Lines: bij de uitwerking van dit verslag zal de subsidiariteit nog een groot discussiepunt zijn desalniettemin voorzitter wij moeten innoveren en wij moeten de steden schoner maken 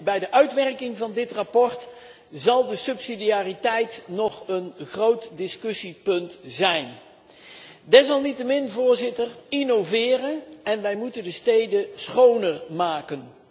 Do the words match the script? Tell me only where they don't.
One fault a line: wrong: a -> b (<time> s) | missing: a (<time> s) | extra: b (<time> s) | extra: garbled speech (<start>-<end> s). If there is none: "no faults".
missing: wij moeten (9.3 s)